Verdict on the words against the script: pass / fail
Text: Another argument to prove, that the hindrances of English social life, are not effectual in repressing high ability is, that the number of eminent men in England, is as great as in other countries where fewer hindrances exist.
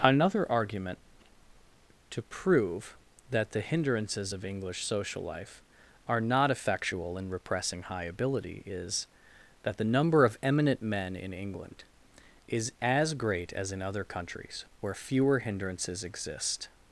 pass